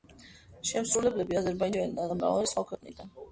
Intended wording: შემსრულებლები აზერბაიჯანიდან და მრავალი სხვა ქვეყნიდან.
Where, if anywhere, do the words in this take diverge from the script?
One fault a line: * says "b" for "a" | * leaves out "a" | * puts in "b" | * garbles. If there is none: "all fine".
all fine